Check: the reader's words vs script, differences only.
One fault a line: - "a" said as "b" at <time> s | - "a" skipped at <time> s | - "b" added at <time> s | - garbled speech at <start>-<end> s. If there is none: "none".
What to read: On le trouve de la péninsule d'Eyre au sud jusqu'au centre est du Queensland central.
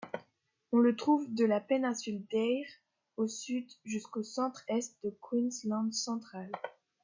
none